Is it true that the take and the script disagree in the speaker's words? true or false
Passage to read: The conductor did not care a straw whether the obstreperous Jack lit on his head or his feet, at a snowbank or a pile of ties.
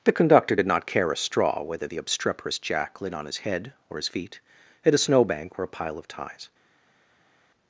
false